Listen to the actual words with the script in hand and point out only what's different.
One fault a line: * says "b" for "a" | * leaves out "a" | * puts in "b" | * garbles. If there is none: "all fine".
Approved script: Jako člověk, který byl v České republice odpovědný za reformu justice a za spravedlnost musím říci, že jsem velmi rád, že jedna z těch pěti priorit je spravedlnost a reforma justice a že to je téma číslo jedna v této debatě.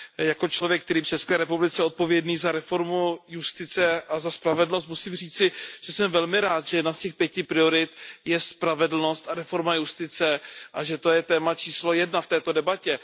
* leaves out "byl"